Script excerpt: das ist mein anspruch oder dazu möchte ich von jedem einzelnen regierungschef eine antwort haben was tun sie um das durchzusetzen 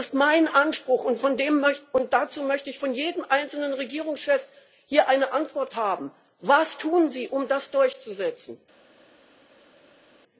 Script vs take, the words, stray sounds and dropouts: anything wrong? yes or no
yes